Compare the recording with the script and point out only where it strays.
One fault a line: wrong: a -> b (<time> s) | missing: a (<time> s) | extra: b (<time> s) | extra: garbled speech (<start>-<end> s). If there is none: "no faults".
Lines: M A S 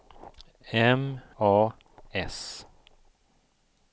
no faults